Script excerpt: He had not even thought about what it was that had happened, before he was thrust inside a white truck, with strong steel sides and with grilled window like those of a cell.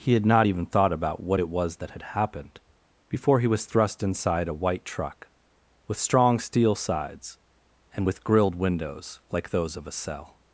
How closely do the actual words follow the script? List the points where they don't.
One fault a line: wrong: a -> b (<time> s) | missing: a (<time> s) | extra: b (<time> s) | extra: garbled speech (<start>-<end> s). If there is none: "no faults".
wrong: window -> windows (8.6 s)